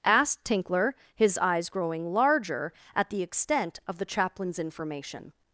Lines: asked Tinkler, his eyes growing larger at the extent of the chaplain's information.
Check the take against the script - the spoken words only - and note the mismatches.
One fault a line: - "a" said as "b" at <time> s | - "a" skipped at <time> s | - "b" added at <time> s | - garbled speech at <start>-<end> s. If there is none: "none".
none